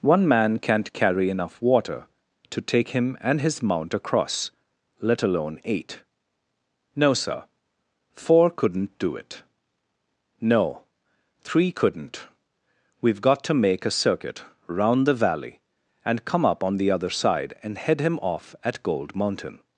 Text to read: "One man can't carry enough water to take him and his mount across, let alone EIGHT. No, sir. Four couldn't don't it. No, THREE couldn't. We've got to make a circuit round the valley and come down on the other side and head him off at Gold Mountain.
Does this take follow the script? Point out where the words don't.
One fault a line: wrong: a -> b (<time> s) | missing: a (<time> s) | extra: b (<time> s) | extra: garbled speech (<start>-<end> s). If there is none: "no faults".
wrong: don't -> do (9.0 s)
wrong: down -> up (16.4 s)